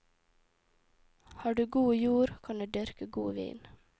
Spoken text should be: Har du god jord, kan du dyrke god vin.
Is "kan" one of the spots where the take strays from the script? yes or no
no